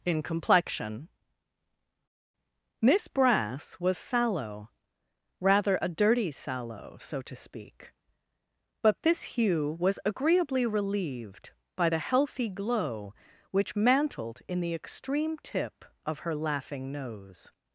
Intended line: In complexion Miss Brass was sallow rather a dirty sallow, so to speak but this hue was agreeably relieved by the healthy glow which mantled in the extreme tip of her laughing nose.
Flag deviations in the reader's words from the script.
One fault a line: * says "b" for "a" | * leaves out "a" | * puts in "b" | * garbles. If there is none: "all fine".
all fine